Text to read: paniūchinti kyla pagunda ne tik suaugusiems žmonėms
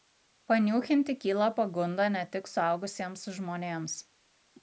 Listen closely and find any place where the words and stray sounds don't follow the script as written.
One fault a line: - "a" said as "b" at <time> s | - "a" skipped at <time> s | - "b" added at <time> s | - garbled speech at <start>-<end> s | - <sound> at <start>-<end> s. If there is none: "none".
none